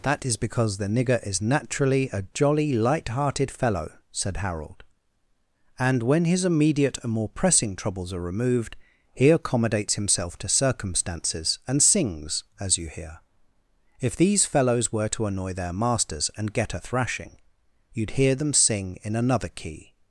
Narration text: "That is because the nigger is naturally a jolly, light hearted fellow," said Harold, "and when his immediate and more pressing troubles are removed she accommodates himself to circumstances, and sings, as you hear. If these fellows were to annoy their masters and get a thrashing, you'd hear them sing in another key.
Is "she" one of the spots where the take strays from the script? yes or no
yes